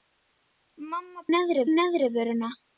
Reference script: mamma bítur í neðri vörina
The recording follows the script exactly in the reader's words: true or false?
false